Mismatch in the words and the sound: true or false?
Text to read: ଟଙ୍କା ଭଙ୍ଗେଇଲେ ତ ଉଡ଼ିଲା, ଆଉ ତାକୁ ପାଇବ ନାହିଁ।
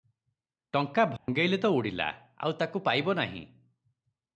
true